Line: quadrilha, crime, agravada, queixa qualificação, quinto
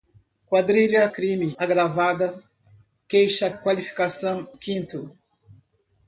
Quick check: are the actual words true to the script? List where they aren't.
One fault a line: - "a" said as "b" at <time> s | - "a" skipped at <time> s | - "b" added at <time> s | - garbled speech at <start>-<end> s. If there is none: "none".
none